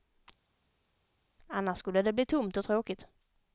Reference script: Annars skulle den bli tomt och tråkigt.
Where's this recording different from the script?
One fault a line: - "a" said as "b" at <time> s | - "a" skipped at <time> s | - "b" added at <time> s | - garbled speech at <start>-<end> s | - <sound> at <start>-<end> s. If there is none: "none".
- "den" said as "det" at 2.0 s